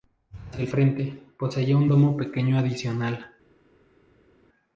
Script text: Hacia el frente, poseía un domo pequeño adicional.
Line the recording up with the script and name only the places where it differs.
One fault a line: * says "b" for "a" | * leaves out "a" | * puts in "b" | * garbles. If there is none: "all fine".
all fine